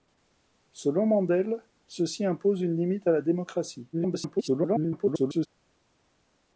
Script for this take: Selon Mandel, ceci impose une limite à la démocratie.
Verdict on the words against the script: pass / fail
fail